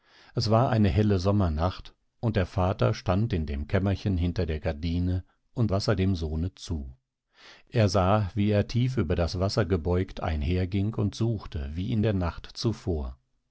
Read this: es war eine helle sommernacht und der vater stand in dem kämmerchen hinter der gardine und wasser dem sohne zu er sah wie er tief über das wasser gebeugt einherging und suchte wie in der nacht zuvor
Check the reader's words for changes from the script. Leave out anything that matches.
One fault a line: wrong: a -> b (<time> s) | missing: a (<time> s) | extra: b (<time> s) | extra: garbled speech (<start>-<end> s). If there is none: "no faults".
no faults